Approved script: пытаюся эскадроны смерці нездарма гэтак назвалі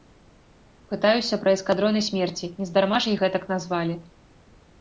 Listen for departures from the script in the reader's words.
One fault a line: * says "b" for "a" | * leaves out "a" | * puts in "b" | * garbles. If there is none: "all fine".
* puts in "пра"
* puts in "ж іх"